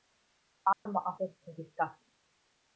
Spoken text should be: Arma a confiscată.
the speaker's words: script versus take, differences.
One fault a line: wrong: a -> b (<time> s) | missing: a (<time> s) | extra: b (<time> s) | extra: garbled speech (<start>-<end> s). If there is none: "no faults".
extra: fost (1.2 s)